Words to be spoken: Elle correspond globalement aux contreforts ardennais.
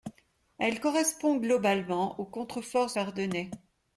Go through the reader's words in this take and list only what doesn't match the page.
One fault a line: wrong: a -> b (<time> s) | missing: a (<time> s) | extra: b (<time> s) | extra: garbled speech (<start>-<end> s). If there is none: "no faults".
no faults